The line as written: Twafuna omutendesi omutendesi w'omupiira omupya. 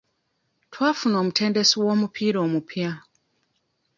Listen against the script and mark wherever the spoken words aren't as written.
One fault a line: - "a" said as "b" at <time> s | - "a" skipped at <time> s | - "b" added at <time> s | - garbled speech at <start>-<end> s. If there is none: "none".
- "omutendesi" skipped at 1.8 s